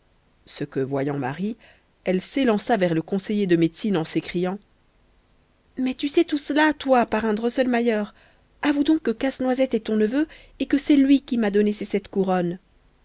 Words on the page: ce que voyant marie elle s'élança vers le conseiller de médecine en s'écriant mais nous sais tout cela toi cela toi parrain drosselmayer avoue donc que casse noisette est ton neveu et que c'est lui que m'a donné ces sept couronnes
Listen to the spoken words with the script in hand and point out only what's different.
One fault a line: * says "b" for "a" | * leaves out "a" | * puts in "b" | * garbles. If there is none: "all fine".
* says "tu" for "nous"
* leaves out "cela toi"
* says "qui" for "que"